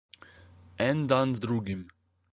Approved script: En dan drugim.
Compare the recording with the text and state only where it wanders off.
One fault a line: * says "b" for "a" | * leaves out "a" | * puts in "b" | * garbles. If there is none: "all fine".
all fine